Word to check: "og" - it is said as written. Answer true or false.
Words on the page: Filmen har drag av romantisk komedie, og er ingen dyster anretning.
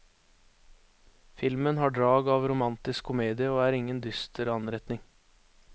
true